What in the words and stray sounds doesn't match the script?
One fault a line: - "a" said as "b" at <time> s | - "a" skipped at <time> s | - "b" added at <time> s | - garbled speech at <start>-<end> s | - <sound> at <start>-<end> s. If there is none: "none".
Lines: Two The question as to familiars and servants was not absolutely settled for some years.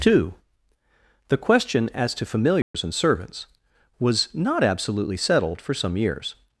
- dropout at 2.6-2.7 s